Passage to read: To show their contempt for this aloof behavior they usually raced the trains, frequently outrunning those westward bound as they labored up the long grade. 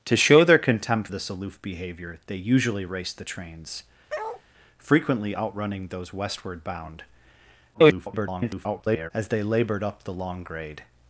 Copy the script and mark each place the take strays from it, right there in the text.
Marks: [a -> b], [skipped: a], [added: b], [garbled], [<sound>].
To show their contempt [skipped: for] this aloof behavior they usually raced the trains, [bark] frequently outrunning those westward bound [garbled] as they labored up the long grade.